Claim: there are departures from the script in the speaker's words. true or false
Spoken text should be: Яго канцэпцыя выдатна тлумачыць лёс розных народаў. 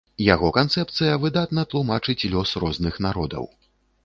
false